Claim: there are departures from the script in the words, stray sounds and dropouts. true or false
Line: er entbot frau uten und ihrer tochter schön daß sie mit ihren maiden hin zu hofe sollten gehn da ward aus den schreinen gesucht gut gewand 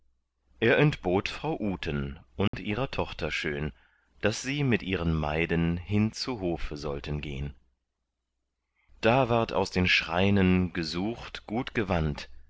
true